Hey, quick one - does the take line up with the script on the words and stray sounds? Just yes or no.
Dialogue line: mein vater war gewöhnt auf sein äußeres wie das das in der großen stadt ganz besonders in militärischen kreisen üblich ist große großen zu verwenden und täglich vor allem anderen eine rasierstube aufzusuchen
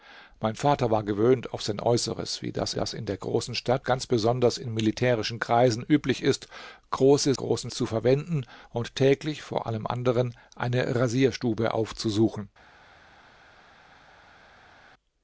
yes